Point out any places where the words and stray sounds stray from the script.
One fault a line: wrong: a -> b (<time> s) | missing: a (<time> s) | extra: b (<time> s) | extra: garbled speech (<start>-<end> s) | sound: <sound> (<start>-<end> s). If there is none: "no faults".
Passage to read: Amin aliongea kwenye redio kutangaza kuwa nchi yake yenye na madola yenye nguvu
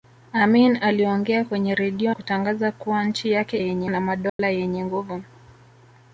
sound: dropout (4.3-4.4 s)